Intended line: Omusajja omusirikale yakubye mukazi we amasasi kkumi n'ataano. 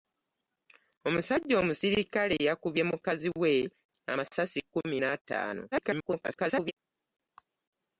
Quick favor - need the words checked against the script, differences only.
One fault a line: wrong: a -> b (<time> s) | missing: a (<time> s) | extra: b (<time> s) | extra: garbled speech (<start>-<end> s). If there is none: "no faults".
extra: garbled speech (5.7-6.7 s)